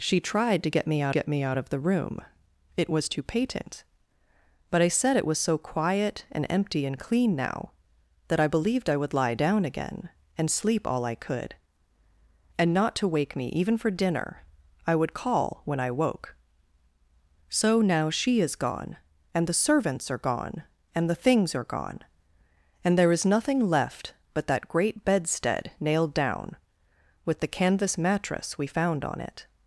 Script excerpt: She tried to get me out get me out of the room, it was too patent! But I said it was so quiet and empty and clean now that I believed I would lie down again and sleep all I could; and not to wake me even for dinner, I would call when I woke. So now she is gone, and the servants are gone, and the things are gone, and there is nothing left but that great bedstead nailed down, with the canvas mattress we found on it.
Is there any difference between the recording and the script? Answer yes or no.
no